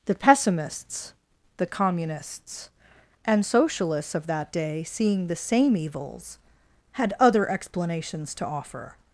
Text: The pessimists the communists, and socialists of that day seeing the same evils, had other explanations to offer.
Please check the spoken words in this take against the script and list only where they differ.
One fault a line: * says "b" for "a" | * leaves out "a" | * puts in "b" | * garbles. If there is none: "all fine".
all fine